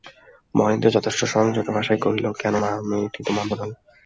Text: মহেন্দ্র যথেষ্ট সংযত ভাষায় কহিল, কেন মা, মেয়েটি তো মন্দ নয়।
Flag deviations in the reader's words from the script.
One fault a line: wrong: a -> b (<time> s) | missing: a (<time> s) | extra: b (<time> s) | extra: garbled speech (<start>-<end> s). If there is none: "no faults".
no faults